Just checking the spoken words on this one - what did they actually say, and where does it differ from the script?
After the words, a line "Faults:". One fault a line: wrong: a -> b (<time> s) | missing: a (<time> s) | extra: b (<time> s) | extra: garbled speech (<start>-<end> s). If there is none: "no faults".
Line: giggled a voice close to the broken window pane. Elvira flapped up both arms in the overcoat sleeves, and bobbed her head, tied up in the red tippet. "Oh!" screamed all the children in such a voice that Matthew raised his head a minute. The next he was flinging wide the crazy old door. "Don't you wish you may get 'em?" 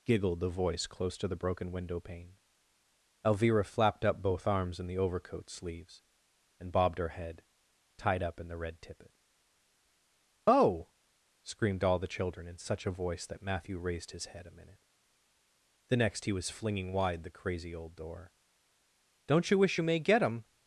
giggled the voice close to the broken window pane. Elvira flapped up both arms in the overcoat sleeves, and bobbed her head, tied up in the red tippet. "Oh!" screamed all the children in such a voice that Matthew raised his head a minute. The next he was flinging wide the crazy old door. "Don't you wish you may get 'em?"
Faults:
wrong: a -> the (0.4 s)